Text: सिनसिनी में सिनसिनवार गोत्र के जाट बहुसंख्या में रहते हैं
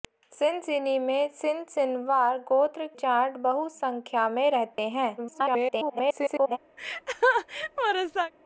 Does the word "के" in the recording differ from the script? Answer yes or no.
yes